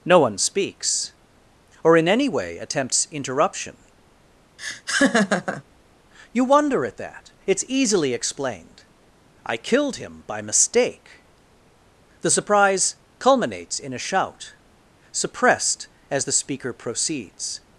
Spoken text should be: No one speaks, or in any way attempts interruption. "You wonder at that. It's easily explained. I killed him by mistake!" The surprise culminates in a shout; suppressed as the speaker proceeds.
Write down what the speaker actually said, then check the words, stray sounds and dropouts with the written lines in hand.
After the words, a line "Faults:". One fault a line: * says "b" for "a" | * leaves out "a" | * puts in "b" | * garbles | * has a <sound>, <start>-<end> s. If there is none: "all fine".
No one speaks, or in any way attempts interruption. "You wonder at that. It's easily explained. I killed him by mistake!" The surprise culminates in a shout; suppressed as the speaker proceeds.
Faults:
* has a laugh, 4.6-5.6 s